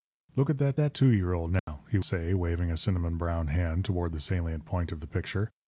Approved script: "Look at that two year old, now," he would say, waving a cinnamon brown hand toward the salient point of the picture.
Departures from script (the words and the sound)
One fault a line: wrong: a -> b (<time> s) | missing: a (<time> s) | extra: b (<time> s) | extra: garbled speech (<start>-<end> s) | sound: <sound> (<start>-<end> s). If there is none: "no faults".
extra: that (0.7 s)
sound: dropout (1.6-1.7 s)
missing: would (2.0 s)